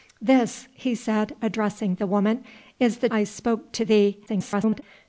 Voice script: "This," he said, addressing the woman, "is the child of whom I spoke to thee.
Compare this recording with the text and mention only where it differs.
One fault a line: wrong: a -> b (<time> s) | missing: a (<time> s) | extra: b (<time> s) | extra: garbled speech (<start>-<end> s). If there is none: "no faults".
missing: child of whom (3.1 s)
extra: garbled speech (4.3-4.8 s)